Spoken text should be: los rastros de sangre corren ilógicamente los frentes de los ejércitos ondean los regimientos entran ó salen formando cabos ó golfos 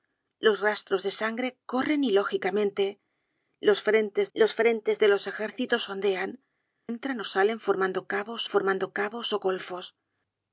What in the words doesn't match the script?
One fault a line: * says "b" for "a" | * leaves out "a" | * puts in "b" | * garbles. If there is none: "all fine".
* puts in "los frentes"
* leaves out "los regimientos"
* puts in "formando cabos"